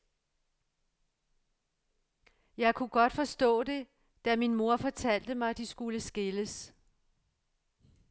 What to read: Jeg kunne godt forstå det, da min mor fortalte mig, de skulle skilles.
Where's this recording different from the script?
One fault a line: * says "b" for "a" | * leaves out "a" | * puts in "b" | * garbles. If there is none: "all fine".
all fine